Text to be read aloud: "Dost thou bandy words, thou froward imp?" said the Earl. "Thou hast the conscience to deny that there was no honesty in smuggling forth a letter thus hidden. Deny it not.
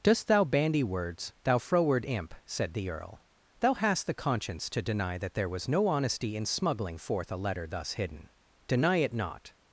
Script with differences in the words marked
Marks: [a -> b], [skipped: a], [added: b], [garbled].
"Dost thou bandy words, thou froward imp?" said the Earl. "Thou hast the conscience to deny that there was no honesty in smuggling forth a letter thus hidden. Deny it not.